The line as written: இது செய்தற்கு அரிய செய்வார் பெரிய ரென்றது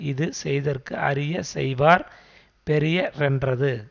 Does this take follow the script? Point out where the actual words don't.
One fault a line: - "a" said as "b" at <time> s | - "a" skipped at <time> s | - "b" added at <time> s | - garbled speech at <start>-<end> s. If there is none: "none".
none